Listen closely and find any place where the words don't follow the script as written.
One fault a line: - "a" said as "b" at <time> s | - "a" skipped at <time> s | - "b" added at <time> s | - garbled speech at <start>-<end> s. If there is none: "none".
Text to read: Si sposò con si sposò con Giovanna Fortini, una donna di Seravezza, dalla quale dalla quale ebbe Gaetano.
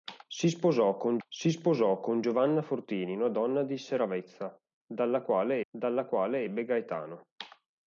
none